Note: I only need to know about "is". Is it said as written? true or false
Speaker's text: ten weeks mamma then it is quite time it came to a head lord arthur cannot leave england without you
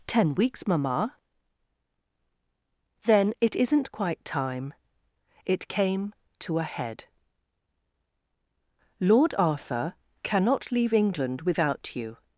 false